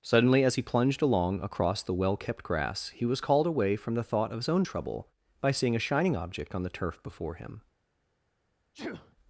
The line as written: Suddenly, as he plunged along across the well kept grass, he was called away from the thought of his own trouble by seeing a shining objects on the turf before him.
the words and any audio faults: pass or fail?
fail